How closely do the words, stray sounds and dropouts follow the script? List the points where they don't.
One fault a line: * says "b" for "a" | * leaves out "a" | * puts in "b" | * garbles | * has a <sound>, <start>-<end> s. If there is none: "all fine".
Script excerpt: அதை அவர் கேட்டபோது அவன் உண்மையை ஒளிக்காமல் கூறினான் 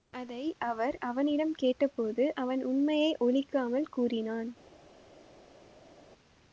* puts in "அவனிடம்"